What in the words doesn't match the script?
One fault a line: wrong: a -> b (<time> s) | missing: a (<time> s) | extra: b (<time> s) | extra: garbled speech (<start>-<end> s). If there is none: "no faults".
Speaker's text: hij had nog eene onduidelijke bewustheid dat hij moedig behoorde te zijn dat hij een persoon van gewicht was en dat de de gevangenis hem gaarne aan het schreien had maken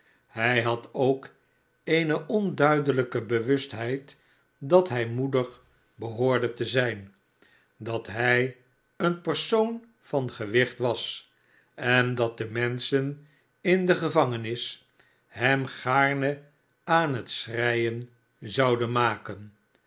wrong: nog -> ook (0.9 s)
extra: menschen in (12.5 s)
wrong: had -> zouden (18.4 s)